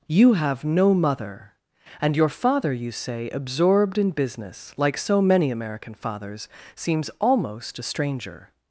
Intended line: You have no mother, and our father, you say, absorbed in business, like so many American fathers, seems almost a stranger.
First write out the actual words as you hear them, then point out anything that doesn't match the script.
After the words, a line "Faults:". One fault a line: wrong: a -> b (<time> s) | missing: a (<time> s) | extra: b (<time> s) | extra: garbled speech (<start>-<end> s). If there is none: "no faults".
You have no mother, and your father, you say, absorbed in business, like so many American fathers, seems almost a stranger.
Faults:
wrong: our -> your (2.1 s)